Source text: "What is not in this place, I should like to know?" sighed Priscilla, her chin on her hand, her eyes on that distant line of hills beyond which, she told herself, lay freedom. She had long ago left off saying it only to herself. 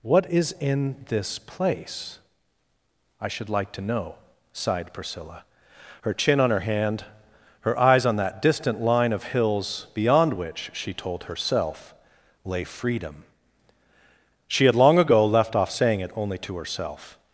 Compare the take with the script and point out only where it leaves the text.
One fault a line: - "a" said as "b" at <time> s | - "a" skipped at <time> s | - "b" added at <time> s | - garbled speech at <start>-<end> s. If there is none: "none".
- "not" skipped at 0.6 s